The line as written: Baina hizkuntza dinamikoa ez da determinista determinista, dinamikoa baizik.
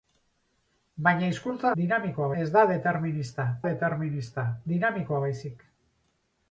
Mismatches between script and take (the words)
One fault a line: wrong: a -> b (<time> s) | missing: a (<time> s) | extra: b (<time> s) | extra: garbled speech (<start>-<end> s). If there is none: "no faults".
no faults